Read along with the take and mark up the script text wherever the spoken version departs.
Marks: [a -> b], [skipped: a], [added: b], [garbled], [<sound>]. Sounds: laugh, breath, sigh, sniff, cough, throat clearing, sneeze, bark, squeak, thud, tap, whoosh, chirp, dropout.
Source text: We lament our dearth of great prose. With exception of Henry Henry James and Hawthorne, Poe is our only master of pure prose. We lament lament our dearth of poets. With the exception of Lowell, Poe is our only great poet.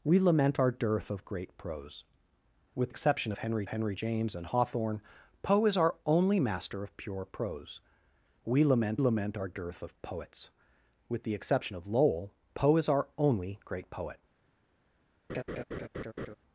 We lament our dearth of great prose. With exception of Henry Henry James and Hawthorne, Poe is our only master of pure prose. We lament lament our dearth of poets. With the exception of Lowell, Poe is our only great poet. [laugh]